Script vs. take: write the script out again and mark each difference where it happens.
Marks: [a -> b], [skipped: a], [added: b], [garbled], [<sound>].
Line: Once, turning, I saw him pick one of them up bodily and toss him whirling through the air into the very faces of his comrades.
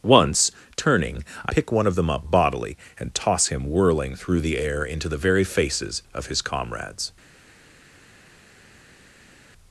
Once, turning, I [skipped: saw him] pick one of them up bodily and toss him whirling through the air into the very faces of his comrades.